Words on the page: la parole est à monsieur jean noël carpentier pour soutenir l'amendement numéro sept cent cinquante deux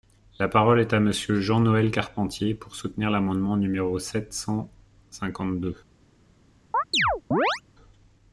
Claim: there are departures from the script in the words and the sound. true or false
true